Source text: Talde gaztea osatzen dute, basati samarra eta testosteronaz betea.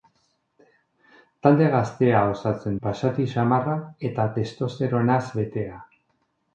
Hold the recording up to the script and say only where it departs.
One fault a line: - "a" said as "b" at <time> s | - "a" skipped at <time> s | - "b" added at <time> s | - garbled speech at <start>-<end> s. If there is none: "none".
- "dute" skipped at 2.8 s